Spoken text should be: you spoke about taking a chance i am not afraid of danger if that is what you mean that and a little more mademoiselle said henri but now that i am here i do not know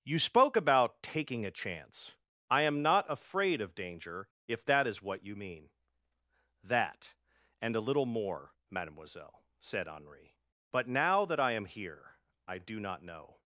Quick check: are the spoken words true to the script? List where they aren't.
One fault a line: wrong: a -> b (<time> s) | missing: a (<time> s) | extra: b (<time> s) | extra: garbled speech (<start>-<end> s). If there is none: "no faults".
no faults